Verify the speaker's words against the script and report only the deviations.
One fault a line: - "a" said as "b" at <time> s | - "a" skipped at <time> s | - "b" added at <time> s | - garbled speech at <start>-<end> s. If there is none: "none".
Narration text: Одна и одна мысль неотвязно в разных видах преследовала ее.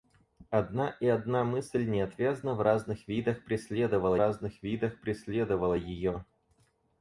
- "разных видах преследовала" added at 4.1 s